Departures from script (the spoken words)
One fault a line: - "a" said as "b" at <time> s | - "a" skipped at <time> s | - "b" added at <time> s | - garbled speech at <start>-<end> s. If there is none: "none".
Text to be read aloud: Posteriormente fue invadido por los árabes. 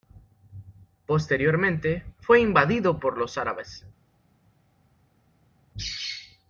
none